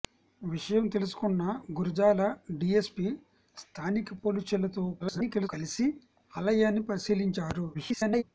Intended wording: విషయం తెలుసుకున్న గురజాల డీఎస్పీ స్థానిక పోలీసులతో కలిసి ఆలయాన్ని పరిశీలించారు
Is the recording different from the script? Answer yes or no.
yes